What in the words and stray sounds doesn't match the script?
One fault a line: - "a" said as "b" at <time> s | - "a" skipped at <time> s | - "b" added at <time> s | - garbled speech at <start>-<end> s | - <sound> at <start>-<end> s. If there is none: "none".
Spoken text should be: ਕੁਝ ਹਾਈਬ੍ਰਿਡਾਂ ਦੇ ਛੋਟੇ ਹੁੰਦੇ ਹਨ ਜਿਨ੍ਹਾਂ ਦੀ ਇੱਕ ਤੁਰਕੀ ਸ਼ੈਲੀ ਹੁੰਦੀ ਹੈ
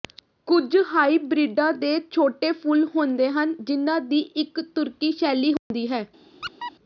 - "ਫੁੱਲ" added at 2.5 s
- dropout at 5.6-5.7 s
- squeak at 6.4-6.7 s